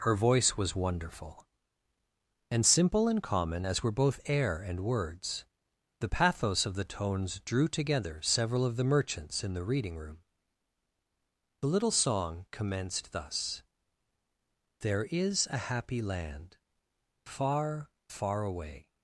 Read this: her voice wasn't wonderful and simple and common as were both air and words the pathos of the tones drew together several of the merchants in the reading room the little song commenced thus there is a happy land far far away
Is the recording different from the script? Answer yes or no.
yes